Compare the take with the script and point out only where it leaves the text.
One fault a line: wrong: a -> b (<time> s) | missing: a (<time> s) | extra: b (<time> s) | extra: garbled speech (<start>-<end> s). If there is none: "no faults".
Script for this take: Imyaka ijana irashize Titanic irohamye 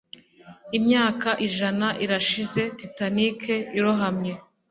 no faults